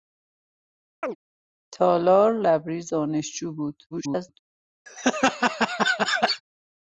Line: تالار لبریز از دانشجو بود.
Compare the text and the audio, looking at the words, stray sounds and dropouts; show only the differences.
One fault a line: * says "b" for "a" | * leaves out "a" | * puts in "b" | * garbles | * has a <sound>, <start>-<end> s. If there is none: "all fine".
* has a chirp, 1.0-1.2 s
* leaves out "از"
* garbles
* has a laugh, 4.9-6.4 s